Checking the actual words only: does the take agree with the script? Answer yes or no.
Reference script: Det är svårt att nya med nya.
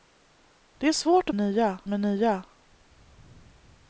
yes